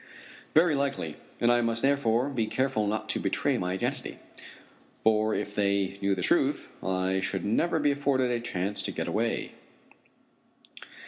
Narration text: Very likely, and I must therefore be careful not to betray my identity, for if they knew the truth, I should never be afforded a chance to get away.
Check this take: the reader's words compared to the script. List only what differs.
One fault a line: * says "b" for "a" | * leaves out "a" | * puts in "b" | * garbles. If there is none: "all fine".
all fine